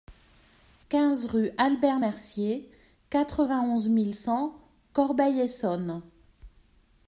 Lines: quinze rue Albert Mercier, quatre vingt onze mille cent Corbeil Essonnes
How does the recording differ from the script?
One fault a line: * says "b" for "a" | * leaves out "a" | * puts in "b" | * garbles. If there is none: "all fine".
all fine